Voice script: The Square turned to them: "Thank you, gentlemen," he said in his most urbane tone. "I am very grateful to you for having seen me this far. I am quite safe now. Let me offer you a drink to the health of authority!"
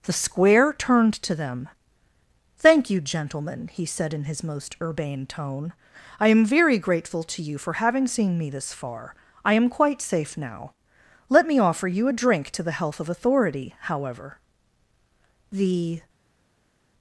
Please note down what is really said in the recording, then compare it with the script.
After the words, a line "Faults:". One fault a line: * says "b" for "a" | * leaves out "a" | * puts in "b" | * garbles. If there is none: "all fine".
The Square turned to them: "Thank you, gentlemen," he said in his most urbane tone. "I am very grateful to you for having seen me this far. I am quite safe now. Let me offer you a drink to the health of authority!" However, the
Faults:
* puts in "However the"